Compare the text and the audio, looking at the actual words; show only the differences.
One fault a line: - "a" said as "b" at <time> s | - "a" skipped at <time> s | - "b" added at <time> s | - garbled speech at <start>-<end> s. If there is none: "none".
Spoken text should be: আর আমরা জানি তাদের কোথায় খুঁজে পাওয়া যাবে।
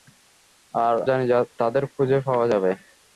- "আমরা" skipped at 0.9 s
- "কোথায়" skipped at 1.8 s